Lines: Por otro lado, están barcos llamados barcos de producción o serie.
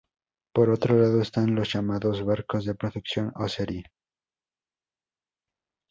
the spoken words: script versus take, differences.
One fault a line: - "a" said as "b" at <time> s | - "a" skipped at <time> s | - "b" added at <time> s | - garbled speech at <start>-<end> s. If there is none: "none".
- "barcos" said as "los" at 1.5 s